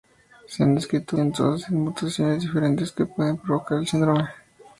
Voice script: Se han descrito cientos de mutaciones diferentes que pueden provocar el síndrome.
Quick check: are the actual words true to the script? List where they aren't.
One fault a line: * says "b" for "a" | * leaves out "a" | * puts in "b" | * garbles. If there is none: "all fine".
all fine